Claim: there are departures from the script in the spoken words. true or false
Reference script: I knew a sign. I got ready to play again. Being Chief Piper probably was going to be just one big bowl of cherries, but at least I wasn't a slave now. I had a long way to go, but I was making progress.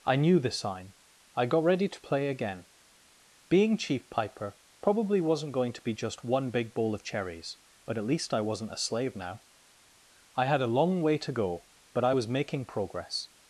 true